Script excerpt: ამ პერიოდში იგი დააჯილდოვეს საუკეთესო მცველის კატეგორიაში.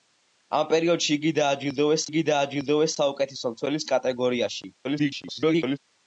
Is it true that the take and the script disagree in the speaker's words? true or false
true